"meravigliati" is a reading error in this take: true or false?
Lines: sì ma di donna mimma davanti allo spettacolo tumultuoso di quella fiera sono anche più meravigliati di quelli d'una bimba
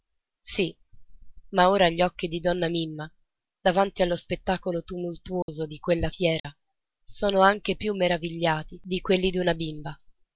false